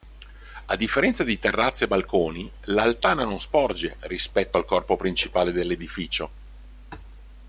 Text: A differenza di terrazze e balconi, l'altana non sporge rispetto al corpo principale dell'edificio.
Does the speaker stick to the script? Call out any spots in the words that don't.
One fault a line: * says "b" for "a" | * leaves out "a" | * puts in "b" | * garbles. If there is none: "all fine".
all fine